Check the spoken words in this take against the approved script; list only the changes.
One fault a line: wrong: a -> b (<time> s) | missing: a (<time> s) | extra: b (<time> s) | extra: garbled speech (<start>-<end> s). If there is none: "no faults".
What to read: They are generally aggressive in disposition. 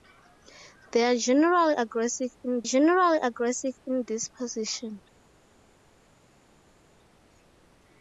extra: generally aggressive in (2.6 s)